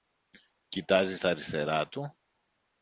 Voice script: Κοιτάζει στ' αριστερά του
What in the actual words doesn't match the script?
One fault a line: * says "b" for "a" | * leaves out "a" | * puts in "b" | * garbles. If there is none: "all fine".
all fine